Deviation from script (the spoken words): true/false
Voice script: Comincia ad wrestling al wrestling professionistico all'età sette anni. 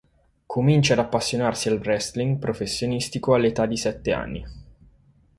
true